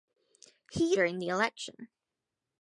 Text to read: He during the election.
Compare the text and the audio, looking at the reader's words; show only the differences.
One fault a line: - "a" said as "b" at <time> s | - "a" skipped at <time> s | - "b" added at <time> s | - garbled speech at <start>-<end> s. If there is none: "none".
none